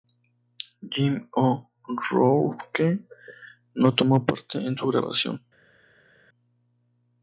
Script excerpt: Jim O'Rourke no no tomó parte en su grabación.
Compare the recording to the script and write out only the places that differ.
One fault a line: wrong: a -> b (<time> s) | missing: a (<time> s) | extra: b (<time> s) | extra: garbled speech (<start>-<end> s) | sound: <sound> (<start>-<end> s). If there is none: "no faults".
missing: no (3.9 s)